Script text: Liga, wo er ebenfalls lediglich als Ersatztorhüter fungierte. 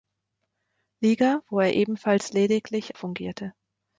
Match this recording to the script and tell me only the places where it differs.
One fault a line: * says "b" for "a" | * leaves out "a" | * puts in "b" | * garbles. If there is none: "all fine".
* leaves out "als Ersatztorhüter"